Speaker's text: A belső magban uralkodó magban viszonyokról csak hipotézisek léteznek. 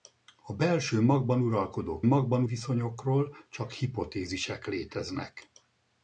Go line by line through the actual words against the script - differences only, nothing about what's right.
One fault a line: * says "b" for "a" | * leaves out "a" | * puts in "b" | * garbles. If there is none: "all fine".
all fine